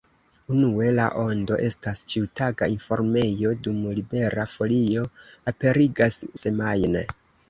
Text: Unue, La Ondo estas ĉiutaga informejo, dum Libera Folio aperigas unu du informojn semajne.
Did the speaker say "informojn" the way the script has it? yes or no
no